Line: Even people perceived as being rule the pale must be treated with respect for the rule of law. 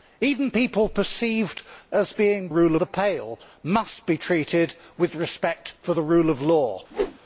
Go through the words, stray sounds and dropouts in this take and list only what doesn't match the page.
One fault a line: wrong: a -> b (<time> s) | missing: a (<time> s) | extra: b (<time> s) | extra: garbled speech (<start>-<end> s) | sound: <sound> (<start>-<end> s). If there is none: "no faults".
sound: whoosh (6.9-7.2 s)